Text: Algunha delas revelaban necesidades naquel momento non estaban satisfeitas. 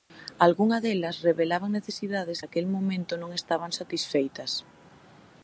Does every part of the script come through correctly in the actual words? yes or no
yes